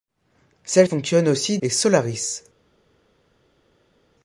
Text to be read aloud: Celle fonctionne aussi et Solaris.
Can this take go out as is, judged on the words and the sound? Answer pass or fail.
pass